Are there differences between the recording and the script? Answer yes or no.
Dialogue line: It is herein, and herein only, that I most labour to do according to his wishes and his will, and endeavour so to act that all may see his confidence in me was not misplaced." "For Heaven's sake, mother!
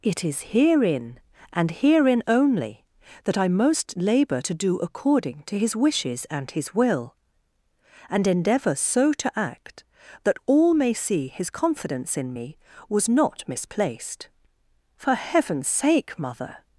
no